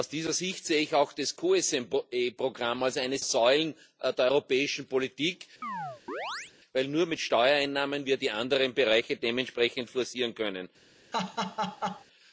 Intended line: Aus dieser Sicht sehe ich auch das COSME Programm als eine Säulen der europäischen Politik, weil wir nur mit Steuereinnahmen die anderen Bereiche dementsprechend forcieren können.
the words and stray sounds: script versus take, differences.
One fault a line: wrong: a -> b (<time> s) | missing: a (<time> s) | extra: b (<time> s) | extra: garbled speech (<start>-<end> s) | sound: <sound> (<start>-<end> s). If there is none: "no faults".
sound: chirp (5.6-6.5 s)
sound: laugh (11.1-12.0 s)